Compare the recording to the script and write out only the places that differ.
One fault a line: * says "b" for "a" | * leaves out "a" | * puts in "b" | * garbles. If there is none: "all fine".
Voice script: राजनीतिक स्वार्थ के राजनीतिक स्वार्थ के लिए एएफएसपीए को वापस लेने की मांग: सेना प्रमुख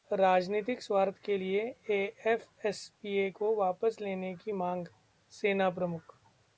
* leaves out "राजनीतिक स्वार्थ के"